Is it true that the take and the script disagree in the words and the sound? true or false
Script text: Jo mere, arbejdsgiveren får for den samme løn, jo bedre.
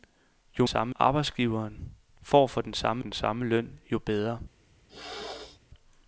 true